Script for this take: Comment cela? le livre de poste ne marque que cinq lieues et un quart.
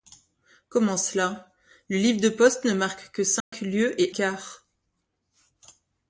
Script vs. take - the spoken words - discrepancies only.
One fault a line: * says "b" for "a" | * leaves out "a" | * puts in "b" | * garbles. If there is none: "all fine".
* leaves out "un"